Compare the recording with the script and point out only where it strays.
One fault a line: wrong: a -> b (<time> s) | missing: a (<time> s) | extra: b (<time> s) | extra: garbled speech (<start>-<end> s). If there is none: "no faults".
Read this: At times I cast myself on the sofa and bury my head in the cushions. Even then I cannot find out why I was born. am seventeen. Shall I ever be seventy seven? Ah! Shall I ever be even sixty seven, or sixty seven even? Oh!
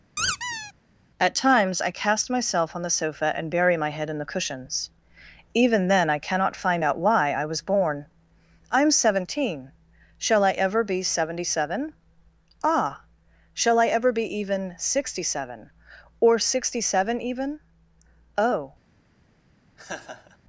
extra: I (8.7 s)